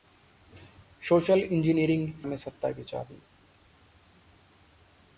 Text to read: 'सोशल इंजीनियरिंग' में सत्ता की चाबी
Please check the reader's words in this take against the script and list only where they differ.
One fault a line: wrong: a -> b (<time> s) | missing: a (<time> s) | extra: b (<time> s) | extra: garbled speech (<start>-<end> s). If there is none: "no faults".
no faults